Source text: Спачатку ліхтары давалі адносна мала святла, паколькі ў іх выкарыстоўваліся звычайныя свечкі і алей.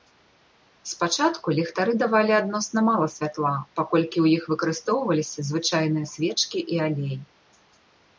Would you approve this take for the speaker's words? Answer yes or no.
yes